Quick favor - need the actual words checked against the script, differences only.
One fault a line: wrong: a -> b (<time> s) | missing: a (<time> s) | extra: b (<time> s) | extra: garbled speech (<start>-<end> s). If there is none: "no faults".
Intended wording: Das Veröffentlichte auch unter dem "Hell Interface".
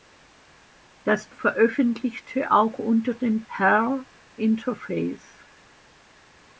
no faults